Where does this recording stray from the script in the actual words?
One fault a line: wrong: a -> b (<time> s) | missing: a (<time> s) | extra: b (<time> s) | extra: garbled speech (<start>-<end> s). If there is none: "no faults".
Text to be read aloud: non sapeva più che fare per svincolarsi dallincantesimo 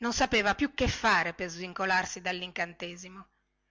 no faults